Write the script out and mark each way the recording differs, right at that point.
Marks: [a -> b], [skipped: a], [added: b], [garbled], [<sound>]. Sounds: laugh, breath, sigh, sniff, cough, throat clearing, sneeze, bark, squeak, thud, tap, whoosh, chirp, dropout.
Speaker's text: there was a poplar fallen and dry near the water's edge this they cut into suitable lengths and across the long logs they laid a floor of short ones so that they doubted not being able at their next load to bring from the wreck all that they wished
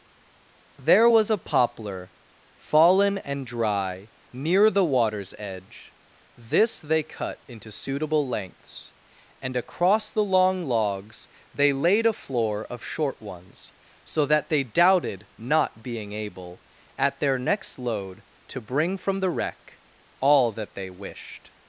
there was a poplar fallen and dry near the water's edge this they cut into suitable lengths and across the long logs they laid a floor of short ones so that they doubted not being able at their next load to bring from the wreck all that they wished